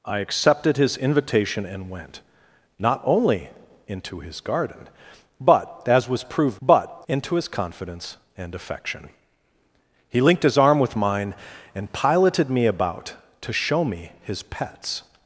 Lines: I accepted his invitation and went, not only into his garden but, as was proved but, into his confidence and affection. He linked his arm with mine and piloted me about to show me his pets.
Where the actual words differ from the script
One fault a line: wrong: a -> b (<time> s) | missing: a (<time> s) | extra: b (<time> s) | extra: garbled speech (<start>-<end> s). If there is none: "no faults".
no faults